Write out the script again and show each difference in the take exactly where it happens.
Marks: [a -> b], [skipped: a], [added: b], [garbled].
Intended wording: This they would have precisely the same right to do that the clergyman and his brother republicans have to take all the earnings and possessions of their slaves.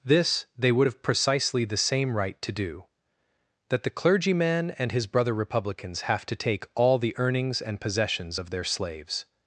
This they would have precisely the same right to do that the clergyman and his brother republicans have to take all the earnings and possessions of their slaves.